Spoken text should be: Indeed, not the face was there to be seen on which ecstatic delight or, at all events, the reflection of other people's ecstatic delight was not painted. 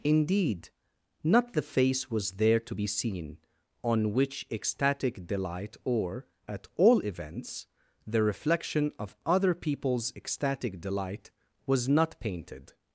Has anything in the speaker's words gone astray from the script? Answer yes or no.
no